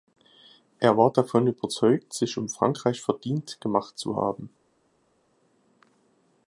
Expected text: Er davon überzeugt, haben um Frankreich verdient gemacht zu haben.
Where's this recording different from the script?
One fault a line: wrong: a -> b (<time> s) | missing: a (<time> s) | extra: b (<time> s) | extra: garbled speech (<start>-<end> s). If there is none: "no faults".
extra: war (1.0 s)
wrong: haben -> sich (2.1 s)